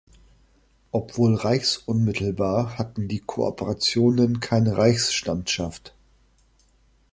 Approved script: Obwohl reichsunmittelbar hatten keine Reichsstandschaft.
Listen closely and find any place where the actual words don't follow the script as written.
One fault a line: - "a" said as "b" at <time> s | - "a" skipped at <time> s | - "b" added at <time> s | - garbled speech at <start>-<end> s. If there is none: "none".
- "die Kooperationen" added at 3.1 s